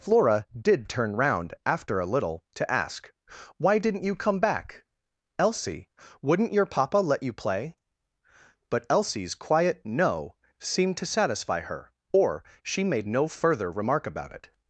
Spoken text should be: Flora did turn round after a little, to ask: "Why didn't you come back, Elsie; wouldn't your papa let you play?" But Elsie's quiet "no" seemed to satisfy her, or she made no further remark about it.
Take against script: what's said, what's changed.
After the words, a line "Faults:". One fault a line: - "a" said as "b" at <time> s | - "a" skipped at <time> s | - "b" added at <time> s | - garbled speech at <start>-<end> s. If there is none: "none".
Flora did turn round after a little, to ask: "Why didn't you come back, Elsie; wouldn't your papa let you play?" But Elsie's quiet "no" seemed to satisfy her, or she made no further remark about it.
Faults:
none